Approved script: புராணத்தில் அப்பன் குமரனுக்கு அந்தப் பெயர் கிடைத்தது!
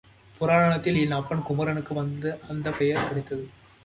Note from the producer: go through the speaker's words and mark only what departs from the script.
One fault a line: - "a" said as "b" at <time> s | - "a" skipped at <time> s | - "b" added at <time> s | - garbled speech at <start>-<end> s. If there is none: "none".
- "என்" added at 0.9 s